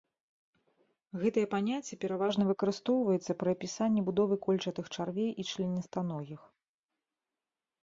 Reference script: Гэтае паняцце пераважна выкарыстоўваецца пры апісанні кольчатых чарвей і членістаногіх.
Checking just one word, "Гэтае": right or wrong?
right